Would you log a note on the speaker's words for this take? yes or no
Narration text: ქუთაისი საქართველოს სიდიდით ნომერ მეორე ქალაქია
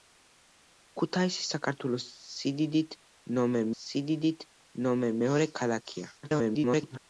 yes